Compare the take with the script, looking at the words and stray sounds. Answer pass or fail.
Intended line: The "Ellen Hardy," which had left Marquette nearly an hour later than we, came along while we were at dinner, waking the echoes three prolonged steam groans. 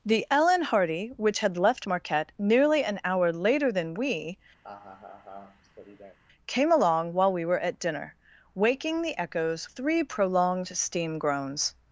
fail